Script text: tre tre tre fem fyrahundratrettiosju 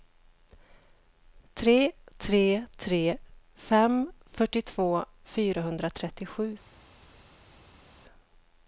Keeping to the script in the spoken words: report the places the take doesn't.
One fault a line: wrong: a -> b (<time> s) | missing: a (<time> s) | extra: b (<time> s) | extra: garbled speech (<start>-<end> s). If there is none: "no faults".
extra: fyrtiotvå (4.4 s)